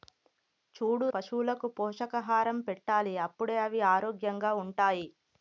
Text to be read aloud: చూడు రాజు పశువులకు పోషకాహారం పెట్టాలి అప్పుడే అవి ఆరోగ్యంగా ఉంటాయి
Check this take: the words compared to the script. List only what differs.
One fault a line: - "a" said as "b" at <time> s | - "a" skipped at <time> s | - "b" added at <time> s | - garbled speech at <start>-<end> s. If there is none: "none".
- "రాజు" skipped at 1.1 s